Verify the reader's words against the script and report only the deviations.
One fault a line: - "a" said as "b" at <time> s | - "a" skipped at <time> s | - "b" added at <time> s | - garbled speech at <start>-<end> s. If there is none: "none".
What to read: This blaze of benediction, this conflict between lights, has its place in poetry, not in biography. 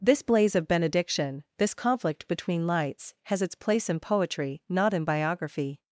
none